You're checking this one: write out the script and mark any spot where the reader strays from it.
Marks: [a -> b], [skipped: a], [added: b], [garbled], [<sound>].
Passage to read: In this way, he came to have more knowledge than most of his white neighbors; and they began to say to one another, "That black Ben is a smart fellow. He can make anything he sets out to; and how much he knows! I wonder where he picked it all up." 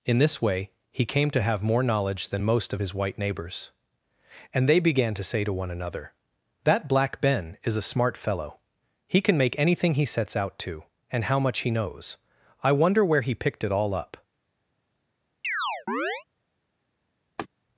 In this way, he came to have more knowledge than most of his white neighbors; and they began to say to one another, "That black Ben is a smart fellow. He can make anything he sets out to; and how much he knows! I wonder where he picked it all up." [chirp] [laugh]